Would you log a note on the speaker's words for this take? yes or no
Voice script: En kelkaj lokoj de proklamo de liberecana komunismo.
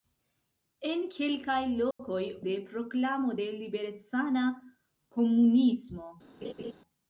no